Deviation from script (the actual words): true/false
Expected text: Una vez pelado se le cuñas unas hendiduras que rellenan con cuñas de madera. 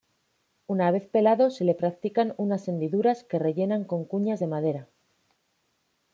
true